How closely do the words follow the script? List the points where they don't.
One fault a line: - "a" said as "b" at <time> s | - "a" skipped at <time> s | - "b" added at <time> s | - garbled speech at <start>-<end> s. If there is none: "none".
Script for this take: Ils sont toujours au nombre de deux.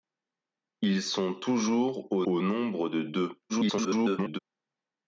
- "au" added at 2.3 s
- garbled speech at 3.5-4.4 s